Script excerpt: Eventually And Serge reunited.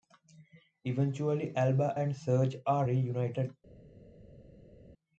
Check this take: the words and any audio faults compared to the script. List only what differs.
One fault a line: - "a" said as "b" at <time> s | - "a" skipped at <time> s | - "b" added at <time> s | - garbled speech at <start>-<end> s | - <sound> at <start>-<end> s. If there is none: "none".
- "Alba" added at 1.6 s
- "are" added at 2.6 s